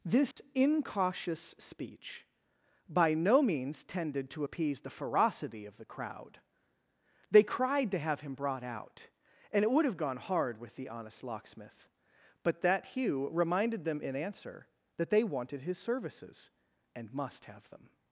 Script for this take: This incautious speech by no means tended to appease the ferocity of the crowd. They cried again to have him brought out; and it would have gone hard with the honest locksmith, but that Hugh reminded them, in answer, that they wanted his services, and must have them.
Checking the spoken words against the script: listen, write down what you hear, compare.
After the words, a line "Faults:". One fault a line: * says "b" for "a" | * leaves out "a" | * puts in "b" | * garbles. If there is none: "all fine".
This incautious speech by no means tended to appease the ferocity of the crowd. They cried to have him brought out; and it would have gone hard with the honest locksmith, but that Hugh reminded them, in answer, that they wanted his services, and must have them.
Faults:
* leaves out "again"